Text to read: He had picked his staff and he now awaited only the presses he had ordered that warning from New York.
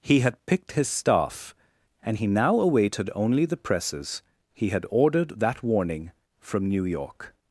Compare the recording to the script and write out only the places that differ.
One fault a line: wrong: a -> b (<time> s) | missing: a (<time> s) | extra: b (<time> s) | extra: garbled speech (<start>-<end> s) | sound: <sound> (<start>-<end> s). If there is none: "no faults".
no faults